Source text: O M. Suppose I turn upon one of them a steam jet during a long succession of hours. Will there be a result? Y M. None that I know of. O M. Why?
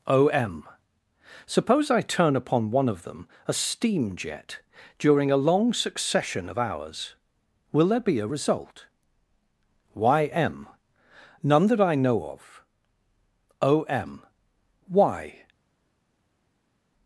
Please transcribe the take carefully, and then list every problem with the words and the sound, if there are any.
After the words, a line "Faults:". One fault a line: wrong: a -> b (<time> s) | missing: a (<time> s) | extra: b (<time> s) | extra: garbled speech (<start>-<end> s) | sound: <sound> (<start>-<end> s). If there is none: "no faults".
O M. Suppose I turn upon one of them a steam jet during a long succession of hours. Will there be a result? Y M. None that I know of. O M. Why?
Faults:
no faults